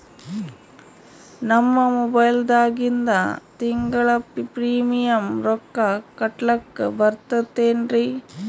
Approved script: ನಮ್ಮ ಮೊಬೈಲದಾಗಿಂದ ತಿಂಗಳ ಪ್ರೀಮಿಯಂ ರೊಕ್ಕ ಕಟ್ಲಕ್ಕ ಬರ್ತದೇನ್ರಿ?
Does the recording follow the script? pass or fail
pass